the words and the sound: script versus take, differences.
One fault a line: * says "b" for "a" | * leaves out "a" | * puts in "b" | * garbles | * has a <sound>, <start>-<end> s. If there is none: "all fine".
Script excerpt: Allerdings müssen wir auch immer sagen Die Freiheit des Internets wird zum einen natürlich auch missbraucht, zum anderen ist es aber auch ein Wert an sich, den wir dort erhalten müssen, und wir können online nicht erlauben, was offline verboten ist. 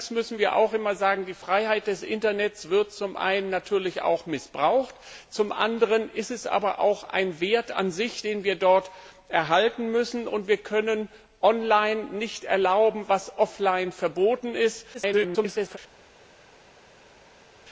* garbles